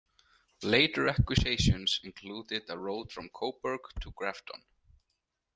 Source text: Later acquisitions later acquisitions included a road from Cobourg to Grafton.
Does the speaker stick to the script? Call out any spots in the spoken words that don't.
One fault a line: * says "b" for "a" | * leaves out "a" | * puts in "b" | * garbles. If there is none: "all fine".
* leaves out "later acquisitions"